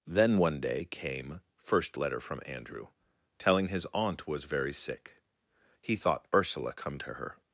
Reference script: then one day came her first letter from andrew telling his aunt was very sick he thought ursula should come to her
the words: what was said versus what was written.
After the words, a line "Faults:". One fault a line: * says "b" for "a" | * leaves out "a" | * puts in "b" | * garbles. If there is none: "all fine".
then one day came first letter from andrew telling his aunt was very sick he thought ursula come to her
Faults:
* leaves out "her"
* leaves out "should"